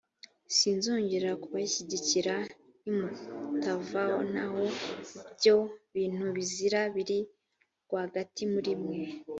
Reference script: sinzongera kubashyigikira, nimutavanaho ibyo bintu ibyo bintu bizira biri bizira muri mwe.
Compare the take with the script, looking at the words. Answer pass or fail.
fail